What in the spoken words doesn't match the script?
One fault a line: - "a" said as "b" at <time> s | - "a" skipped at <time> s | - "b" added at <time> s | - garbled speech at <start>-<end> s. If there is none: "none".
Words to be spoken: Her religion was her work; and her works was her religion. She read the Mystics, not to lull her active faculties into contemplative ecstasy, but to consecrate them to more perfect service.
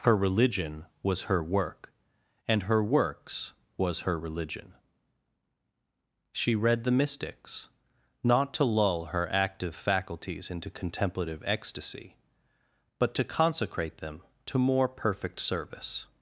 none